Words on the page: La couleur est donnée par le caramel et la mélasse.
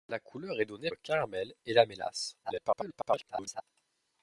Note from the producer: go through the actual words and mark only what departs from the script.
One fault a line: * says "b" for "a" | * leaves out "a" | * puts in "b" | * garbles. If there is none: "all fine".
* leaves out "par"
* garbles